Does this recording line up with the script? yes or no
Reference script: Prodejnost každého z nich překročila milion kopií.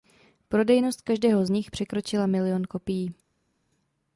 yes